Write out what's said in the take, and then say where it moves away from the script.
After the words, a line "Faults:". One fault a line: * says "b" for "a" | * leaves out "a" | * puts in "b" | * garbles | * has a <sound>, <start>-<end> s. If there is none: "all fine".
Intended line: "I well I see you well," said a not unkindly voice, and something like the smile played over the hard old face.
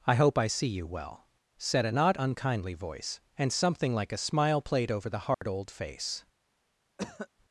"I hope I see you well," said a not unkindly voice, and something like a smile played over the hard old face.
Faults:
* says "hope" for "well"
* says "a" for "the"
* has a dropout, 5.3-5.4 s
* has a cough, 7.0-7.3 s